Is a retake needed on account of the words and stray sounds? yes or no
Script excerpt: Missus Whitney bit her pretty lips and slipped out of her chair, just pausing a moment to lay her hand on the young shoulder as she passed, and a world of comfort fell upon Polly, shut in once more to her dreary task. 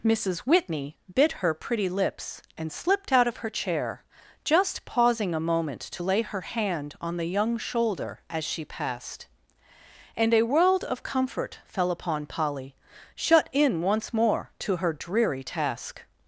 no